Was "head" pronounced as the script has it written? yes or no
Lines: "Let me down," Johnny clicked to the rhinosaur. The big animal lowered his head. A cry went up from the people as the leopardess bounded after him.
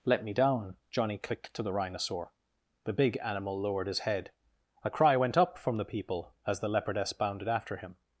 yes